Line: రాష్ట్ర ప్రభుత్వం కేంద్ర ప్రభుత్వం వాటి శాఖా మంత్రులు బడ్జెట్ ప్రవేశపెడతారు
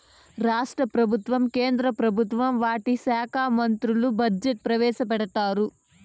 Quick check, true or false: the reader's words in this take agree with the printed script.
true